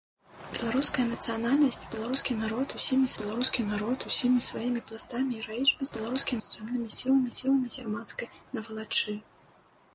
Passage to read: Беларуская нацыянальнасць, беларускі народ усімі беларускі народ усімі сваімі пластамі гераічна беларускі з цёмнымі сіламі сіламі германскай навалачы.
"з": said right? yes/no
yes